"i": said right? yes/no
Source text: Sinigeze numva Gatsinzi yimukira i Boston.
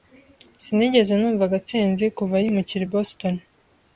yes